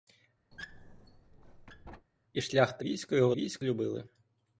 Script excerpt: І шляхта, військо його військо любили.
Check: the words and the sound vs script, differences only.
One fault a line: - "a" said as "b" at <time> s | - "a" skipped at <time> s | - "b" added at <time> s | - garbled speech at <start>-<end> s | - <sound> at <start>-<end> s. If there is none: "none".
- squeak at 0.5-2.1 s